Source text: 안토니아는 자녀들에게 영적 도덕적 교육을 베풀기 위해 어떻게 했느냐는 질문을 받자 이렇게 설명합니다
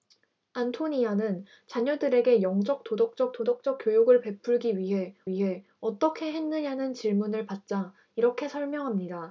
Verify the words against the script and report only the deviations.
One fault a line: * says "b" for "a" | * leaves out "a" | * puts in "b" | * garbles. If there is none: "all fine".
* puts in "도덕적"
* puts in "위해"